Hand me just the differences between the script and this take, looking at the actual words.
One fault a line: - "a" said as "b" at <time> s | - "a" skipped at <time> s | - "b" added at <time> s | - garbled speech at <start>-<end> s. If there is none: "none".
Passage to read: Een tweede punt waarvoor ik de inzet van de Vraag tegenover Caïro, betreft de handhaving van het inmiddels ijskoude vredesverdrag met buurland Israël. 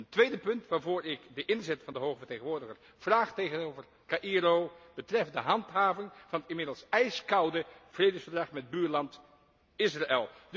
- "Hoge vertegenwoordiger" added at 2.0 s